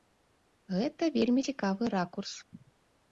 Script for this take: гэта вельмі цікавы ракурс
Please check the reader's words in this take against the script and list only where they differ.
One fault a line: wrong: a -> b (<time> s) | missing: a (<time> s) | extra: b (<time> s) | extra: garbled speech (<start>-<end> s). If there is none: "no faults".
no faults